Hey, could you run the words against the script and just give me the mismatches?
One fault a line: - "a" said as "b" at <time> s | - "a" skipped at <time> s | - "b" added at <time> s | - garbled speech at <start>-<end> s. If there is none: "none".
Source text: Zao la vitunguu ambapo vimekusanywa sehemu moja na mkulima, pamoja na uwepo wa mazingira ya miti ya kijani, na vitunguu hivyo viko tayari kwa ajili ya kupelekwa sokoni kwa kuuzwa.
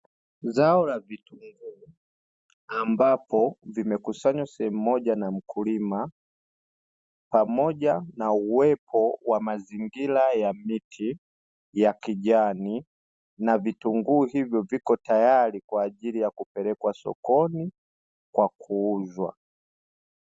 none